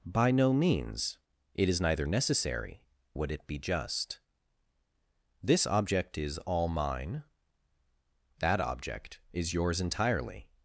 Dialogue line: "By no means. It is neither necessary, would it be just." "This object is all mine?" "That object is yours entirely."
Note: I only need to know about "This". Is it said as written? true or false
true